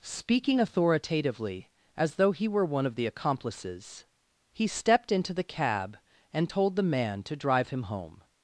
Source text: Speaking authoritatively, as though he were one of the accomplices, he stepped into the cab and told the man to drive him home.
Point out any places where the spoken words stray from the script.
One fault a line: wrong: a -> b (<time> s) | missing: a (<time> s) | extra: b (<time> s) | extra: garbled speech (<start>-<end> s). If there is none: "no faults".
no faults